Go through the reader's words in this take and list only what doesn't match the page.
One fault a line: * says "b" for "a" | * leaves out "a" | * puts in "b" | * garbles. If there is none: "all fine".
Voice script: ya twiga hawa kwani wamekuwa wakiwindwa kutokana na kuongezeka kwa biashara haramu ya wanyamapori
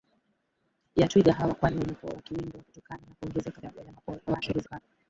* leaves out "kwa biashara haramu"
* garbles